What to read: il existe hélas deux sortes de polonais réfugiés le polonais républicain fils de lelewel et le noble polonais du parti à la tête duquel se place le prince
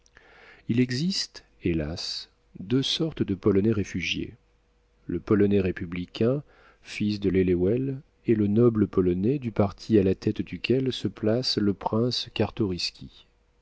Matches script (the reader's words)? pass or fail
pass